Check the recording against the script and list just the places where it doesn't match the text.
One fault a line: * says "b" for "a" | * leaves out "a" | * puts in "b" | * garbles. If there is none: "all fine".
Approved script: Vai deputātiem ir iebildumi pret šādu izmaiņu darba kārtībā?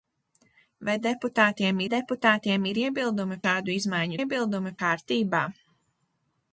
* puts in "deputātiem"
* leaves out "pret"
* says "iebildumi" for "darba"